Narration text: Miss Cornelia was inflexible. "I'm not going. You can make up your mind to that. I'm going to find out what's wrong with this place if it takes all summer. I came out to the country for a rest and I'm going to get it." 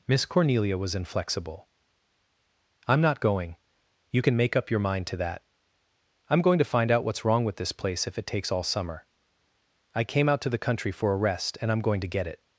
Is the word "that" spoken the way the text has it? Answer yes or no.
yes